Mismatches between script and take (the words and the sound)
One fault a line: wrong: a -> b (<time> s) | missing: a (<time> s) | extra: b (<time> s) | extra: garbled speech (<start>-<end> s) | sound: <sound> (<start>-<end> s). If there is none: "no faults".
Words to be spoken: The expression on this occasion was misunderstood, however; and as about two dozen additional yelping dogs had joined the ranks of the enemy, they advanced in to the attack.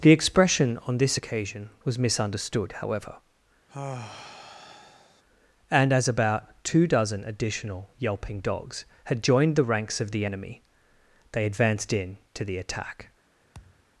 sound: sigh (3.7-5.2 s)
sound: thud (13.5-13.9 s)